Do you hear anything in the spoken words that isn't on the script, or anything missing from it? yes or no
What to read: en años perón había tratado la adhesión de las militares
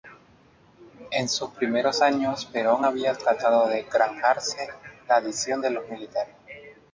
yes